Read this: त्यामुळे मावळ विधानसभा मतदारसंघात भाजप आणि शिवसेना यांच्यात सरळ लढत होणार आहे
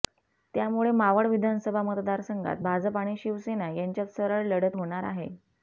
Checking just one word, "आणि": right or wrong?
right